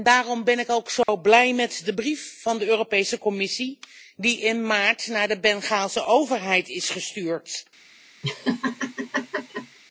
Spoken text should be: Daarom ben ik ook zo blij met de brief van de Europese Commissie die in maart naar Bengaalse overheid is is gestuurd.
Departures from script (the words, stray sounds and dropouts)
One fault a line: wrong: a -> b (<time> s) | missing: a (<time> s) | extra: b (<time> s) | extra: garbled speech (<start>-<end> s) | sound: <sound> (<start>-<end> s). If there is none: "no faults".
sound: dropout (1.0-1.1 s)
extra: de (5.3 s)
missing: is (6.9 s)
sound: laugh (8.2-9.8 s)